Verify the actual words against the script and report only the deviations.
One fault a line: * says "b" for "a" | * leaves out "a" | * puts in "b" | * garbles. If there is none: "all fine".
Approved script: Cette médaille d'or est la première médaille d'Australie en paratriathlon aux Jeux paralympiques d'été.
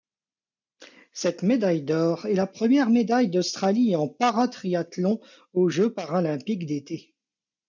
all fine